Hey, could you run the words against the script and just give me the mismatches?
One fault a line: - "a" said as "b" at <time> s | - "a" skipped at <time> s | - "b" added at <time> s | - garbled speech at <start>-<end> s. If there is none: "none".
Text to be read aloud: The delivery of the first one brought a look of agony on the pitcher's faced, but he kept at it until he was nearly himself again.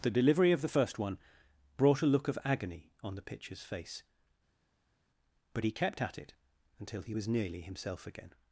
- "faced" said as "face" at 3.6 s